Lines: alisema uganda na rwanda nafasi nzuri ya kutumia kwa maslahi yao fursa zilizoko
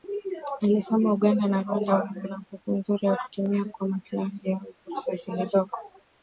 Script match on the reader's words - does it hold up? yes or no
no